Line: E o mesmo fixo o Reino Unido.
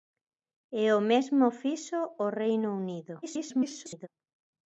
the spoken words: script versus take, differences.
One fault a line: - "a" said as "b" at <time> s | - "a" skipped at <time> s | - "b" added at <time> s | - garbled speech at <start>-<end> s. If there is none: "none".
- garbled speech at 3.2-4.1 s